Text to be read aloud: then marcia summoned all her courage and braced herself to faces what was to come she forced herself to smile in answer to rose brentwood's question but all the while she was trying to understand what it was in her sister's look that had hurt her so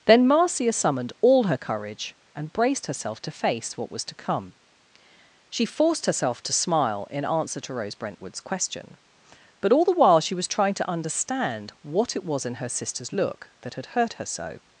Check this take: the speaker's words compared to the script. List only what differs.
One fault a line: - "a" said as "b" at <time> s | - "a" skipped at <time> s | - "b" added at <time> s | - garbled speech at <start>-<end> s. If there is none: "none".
- "faces" said as "face" at 3.3 s